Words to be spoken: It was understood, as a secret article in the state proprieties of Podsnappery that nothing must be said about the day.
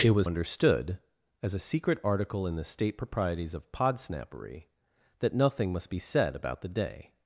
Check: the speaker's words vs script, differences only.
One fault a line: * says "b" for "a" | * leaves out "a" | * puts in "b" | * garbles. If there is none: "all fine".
all fine